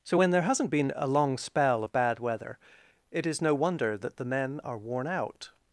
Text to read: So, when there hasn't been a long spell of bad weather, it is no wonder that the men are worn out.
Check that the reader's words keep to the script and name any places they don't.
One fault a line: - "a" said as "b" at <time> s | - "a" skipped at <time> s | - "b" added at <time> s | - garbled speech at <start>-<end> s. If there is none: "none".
none